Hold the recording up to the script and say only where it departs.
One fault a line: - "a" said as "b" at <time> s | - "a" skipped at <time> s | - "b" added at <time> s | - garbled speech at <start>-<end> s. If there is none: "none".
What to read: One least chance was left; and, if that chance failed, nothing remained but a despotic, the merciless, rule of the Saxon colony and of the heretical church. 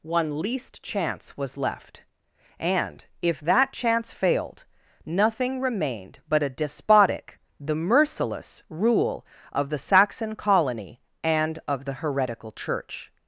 none